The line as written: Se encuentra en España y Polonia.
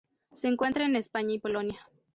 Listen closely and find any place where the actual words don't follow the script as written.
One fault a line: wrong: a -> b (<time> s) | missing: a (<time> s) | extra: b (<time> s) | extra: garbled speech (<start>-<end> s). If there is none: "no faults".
no faults